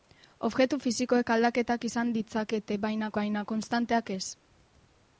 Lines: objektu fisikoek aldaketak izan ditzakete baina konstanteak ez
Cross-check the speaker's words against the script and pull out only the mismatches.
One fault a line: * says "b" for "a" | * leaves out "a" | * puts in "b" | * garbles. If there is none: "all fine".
* puts in "baina"